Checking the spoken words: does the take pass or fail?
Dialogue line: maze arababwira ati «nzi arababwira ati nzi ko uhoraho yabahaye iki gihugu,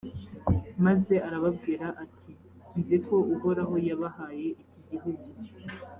fail